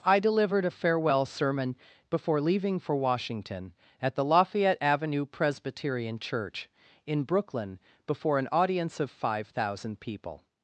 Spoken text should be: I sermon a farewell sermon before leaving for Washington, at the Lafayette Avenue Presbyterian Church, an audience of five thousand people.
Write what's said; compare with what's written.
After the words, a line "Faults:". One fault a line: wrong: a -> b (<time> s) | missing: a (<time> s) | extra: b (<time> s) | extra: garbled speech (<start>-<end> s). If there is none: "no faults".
I delivered a farewell sermon before leaving for Washington, at the Lafayette Avenue Presbyterian Church, in Brooklyn, before an audience of five thousand people.
Faults:
wrong: sermon -> delivered (0.2 s)
extra: in Brooklyn before (7.1 s)